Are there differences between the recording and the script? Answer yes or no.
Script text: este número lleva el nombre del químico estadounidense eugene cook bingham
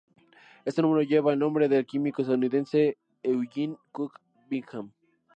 no